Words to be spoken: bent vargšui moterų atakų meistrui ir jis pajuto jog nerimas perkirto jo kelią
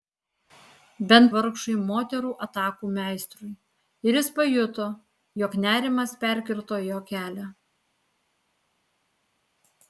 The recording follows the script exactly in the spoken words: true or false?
true